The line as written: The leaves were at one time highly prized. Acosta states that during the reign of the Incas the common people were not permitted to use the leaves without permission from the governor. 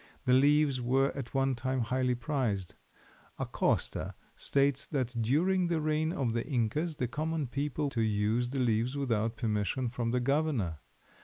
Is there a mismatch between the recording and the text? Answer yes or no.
yes